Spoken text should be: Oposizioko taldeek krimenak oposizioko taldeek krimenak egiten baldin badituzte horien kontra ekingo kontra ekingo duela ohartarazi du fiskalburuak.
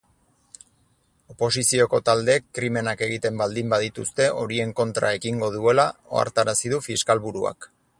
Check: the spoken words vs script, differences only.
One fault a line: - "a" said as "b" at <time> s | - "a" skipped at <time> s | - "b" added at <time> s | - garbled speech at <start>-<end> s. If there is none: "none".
- "oposizioko taldeek krimenak" skipped at 3.0 s
- "kontra ekingo" skipped at 5.5 s